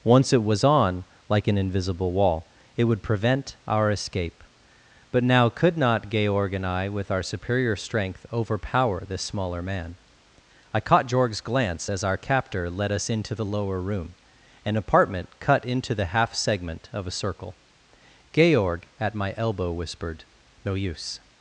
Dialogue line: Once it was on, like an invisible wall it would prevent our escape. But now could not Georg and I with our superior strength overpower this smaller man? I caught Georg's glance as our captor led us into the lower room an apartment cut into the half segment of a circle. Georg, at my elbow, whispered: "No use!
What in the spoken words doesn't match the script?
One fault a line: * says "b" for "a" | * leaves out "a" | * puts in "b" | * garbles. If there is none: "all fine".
all fine